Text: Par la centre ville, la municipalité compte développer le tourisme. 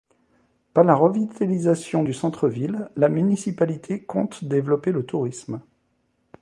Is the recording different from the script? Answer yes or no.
yes